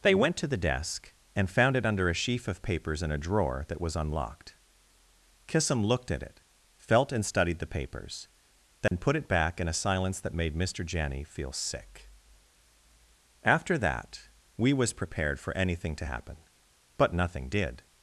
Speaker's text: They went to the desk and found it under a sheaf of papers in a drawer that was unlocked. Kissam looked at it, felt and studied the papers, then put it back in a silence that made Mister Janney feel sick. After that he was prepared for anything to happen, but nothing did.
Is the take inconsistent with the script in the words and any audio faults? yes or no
yes